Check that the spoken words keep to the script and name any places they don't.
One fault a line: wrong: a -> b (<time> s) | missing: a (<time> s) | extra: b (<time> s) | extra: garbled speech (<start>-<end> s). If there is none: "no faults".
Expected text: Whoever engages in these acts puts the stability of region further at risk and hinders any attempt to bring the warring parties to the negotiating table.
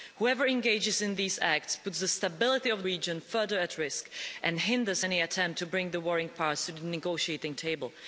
no faults